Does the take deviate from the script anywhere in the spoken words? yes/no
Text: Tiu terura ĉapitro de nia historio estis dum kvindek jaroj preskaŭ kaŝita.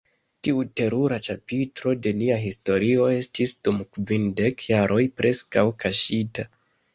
no